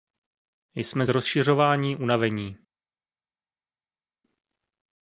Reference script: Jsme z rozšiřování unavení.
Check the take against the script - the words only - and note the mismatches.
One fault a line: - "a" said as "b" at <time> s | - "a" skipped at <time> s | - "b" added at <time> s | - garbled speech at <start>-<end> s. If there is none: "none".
none